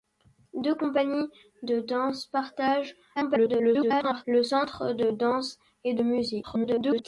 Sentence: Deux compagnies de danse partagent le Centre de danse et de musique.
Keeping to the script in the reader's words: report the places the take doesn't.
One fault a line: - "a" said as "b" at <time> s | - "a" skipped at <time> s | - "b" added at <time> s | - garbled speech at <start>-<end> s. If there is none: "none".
- garbled speech at 3.2-4.3 s
- garbled speech at 6.4-7.0 s